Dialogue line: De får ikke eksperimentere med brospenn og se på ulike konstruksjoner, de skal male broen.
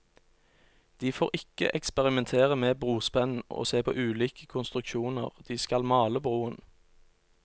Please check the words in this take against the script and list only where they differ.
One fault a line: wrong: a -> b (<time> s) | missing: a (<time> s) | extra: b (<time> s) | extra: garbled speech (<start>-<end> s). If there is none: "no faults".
no faults